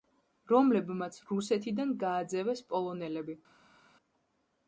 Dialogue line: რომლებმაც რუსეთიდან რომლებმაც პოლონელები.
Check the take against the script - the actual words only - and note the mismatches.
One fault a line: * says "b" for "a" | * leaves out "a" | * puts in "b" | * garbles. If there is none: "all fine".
* says "გააძევეს" for "რომლებმაც"